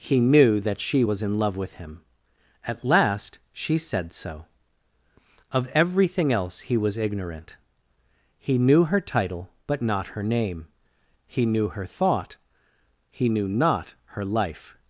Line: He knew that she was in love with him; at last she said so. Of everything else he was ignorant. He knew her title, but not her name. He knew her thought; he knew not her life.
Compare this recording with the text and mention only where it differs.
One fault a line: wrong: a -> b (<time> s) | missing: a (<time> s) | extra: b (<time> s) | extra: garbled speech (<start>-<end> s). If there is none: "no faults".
no faults